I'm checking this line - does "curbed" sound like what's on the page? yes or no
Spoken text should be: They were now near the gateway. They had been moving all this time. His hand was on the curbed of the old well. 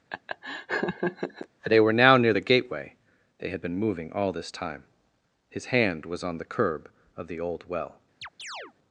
no